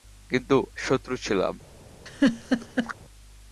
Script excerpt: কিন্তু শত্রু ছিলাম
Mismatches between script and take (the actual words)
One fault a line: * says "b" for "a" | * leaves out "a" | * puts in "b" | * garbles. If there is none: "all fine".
all fine